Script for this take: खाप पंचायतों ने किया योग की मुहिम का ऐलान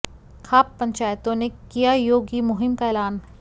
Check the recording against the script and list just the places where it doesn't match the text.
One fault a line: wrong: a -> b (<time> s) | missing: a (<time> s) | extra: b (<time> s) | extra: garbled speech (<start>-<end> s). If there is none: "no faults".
no faults